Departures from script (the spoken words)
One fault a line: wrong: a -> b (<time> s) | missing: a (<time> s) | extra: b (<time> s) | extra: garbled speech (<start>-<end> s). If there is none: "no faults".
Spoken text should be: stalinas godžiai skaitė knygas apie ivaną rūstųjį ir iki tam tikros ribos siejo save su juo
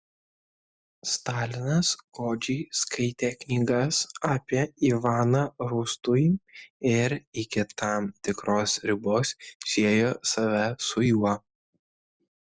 no faults